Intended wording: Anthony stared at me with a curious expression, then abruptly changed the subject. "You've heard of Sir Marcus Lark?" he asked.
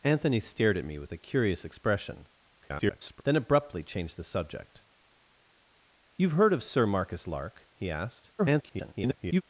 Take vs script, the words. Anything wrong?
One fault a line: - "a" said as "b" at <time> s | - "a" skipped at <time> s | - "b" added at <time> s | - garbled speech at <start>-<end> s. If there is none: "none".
- garbled speech at 2.6-3.2 s
- garbled speech at 8.4-9.4 s